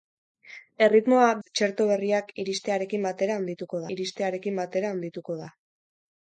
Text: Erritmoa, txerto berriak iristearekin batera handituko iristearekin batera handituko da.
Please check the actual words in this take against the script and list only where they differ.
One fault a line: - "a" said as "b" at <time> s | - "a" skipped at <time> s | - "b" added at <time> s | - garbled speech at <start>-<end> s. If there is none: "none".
none